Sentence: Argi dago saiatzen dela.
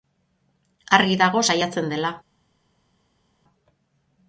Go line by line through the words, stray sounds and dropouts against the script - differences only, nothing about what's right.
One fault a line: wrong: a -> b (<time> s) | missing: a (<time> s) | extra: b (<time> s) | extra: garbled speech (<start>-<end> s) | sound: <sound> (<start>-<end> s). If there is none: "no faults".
no faults